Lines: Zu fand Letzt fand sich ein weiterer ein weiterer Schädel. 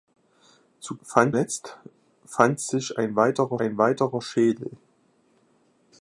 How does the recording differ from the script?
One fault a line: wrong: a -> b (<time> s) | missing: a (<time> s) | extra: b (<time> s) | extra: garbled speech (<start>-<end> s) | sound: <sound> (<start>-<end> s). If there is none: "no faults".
no faults